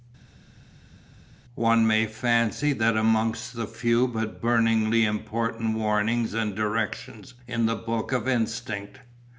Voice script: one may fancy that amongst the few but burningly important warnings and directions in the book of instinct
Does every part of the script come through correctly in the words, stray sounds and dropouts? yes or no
yes